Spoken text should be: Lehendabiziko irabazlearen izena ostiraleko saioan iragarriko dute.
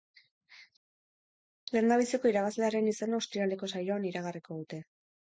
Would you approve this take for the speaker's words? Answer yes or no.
yes